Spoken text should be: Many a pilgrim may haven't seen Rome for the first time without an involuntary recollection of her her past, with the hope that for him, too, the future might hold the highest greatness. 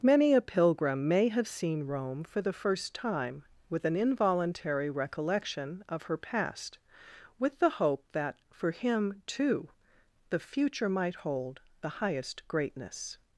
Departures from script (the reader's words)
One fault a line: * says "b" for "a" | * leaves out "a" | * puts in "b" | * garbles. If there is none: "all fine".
* says "have" for "haven't"
* says "with" for "without"
* leaves out "her"